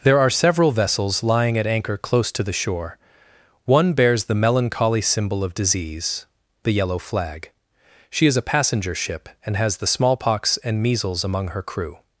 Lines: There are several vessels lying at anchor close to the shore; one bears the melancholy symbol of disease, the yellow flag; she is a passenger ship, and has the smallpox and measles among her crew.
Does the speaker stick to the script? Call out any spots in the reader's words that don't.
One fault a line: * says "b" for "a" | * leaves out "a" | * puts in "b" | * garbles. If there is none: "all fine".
all fine